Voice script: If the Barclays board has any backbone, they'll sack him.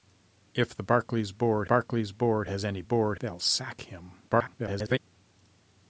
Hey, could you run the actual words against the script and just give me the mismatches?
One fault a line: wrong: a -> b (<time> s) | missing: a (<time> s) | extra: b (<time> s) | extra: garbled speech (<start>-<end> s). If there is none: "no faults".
extra: Barclays board (1.6 s)
wrong: backbone -> board (2.8 s)
extra: garbled speech (4.3-5.0 s)